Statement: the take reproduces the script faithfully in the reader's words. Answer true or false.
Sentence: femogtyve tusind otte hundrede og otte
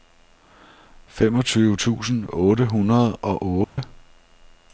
true